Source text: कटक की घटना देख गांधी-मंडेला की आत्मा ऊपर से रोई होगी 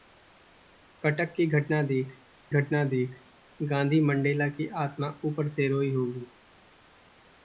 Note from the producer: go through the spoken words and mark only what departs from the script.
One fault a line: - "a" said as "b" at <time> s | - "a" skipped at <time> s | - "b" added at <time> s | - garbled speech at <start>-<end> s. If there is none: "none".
- "घटना देख" added at 2.5 s